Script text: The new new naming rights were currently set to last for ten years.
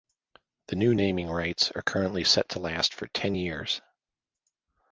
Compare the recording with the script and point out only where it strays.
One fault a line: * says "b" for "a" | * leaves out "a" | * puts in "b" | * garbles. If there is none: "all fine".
* leaves out "new"
* says "are" for "were"